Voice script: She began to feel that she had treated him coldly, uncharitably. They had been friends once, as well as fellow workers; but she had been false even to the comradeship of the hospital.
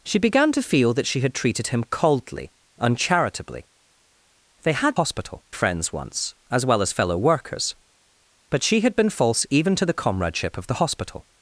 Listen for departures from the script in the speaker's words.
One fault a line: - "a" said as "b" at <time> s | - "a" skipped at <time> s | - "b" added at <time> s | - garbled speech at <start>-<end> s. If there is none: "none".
- "been" said as "hospital" at 5.0 s